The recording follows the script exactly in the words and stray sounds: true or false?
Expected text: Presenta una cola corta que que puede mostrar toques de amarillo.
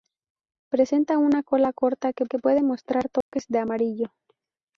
false